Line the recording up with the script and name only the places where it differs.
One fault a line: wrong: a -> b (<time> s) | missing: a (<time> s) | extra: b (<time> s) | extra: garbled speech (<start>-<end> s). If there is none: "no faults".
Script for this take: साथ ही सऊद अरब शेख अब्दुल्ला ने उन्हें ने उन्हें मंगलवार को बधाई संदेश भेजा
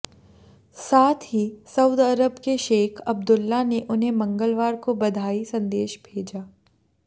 extra: के (2.4 s)
missing: ने उन्हें (4.1 s)